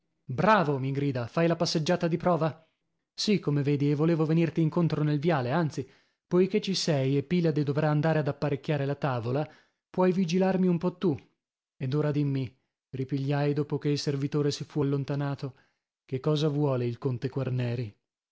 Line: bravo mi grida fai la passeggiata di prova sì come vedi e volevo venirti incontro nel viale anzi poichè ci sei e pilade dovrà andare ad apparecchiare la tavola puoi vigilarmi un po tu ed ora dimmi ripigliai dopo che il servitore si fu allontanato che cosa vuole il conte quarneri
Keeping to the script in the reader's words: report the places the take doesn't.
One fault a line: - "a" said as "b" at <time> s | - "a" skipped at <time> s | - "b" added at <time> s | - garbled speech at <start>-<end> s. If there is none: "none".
none